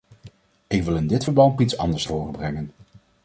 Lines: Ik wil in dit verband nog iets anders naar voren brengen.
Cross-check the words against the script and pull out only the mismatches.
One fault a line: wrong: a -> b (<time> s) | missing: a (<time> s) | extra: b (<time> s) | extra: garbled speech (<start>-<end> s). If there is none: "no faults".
missing: nog (1.6 s)
missing: naar (2.1 s)